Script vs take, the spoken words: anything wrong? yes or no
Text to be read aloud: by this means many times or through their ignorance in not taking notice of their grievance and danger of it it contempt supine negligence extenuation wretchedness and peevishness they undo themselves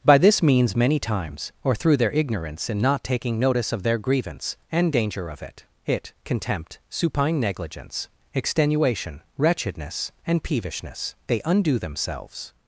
no